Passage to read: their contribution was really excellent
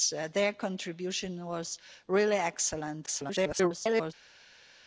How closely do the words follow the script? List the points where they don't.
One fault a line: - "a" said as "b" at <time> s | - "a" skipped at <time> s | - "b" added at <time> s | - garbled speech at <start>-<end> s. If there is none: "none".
- garbled speech at 3.1-4.1 s